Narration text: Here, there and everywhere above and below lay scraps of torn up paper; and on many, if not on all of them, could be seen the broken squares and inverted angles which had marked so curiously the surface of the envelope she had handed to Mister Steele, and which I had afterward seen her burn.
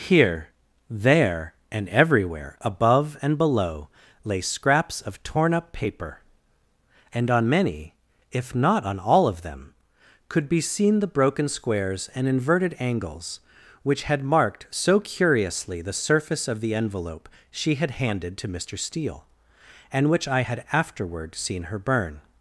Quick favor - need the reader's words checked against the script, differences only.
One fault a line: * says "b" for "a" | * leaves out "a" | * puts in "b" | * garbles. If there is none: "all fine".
all fine